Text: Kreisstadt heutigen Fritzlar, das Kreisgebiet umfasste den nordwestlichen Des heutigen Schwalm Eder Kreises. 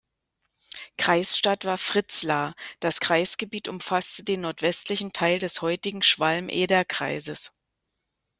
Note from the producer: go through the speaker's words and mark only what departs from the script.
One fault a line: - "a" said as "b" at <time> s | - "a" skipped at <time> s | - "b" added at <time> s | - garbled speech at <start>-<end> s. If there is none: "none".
- "heutigen" said as "war" at 1.6 s
- "Teil" added at 5.1 s